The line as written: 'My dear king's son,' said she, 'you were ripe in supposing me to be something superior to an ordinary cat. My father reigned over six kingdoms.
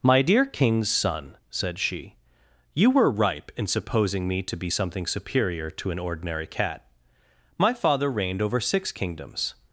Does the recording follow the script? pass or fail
pass